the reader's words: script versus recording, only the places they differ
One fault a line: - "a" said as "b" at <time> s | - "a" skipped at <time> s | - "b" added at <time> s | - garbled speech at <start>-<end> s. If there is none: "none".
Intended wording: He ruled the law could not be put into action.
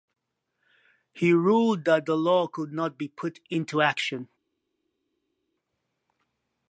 - "that" added at 1.9 s